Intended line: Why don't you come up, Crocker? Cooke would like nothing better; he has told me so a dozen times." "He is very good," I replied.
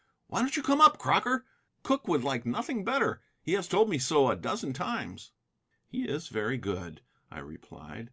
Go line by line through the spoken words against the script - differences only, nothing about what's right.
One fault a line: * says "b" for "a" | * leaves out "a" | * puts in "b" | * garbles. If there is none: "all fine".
all fine